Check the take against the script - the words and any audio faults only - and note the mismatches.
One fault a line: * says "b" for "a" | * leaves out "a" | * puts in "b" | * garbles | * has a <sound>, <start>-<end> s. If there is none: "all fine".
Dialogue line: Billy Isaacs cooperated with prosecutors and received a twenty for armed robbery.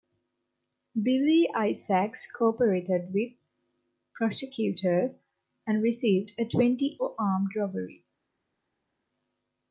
all fine